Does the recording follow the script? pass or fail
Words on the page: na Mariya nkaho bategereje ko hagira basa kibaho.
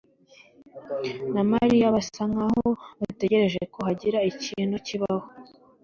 fail